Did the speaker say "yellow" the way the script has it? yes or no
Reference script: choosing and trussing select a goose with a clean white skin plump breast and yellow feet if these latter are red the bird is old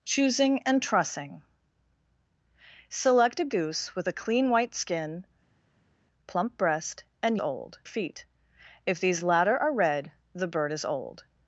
no